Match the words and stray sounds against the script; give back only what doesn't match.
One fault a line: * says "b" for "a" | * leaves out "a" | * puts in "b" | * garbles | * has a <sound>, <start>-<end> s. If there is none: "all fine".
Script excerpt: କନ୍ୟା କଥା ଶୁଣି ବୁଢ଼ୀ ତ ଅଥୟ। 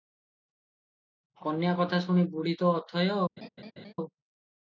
* has a laugh, 3.4-3.9 s